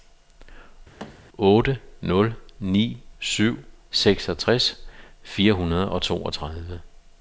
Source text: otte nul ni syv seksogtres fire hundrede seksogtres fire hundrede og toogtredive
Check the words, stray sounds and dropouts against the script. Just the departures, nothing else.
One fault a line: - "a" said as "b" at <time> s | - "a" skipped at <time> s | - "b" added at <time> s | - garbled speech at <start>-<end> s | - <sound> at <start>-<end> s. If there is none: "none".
- thud at 1.0-1.2 s
- "seksogtres fire hundrede" skipped at 5.9 s